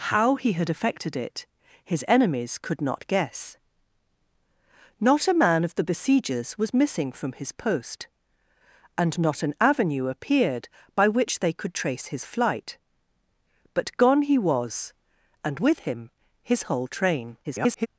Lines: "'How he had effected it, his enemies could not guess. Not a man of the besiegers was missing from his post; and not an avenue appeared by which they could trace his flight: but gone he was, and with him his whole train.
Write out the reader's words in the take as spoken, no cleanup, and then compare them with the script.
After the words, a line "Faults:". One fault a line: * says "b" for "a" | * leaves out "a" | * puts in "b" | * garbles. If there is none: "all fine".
"'How he had effected it, his enemies could not guess. Not a man of the besiegers was missing from his post; and not an avenue appeared by which they could trace his flight: but gone he was, and with him his whole train. [garbled]
Faults:
* garbles